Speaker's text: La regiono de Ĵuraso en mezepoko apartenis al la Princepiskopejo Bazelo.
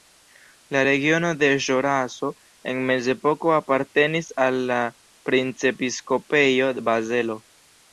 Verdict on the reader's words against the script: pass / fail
pass